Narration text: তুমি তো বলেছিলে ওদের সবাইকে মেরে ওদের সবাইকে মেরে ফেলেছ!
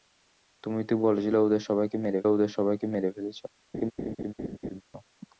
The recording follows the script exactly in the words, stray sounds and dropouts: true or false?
false